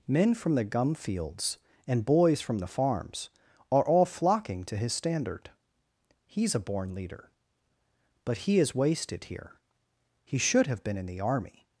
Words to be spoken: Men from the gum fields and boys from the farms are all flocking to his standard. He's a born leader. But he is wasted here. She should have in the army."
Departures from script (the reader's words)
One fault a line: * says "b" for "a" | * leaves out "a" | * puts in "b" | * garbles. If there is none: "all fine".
* says "He" for "She"
* puts in "been"